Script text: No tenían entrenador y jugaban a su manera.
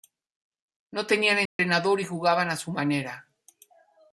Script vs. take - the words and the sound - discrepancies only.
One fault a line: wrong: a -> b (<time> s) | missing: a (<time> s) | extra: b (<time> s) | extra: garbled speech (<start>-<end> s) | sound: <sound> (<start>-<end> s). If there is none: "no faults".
sound: dropout (1.5-1.6 s)